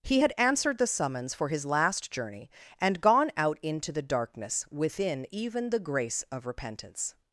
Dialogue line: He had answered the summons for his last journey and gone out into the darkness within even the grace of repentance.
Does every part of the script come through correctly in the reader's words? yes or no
yes